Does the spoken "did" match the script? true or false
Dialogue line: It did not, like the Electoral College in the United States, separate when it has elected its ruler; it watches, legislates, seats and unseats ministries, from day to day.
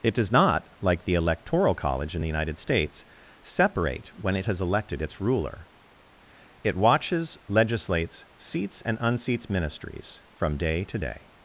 false